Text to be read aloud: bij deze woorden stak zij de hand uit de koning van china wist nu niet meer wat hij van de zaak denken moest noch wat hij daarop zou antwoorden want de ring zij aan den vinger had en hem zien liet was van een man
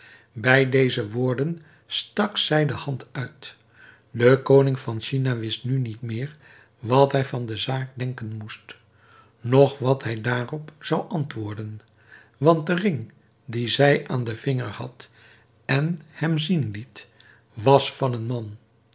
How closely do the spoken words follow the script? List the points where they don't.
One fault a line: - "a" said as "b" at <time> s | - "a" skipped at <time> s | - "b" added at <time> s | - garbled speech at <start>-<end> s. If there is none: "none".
- "dien" added at 13.4 s